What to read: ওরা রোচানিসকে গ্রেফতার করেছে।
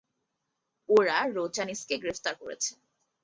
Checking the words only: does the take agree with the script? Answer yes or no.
yes